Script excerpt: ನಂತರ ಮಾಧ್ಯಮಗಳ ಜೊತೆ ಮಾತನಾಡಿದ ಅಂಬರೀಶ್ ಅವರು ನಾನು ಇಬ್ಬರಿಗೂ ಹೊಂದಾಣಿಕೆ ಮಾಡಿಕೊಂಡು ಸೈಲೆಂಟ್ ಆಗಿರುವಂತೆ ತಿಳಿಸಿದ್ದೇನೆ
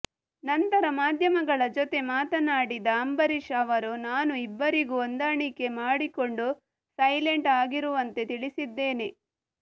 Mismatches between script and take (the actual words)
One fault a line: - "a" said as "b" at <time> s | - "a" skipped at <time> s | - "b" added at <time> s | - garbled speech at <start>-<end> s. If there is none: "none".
none